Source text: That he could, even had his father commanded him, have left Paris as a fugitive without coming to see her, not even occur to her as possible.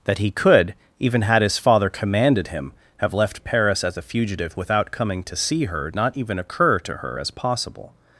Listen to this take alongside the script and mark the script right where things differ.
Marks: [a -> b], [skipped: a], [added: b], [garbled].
That he could, even had his father commanded him, have left Paris as a fugitive without coming to see her, not even occur to her as possible.